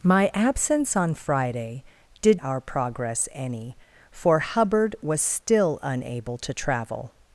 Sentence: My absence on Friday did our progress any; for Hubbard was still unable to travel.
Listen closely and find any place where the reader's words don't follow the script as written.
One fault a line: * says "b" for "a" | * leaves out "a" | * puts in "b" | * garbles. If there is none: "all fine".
all fine